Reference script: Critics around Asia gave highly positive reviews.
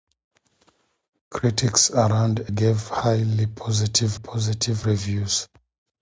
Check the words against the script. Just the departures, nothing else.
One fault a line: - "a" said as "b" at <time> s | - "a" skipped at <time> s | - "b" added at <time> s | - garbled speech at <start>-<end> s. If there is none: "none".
- "Asia" skipped at 2.4 s
- "positive" added at 4.1 s